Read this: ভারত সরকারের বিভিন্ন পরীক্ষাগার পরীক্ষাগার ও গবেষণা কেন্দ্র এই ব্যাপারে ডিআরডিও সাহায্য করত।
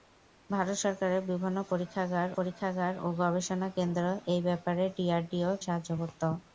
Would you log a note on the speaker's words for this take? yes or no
no